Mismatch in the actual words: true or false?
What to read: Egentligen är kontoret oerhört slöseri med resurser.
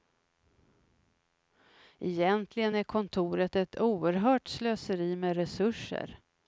true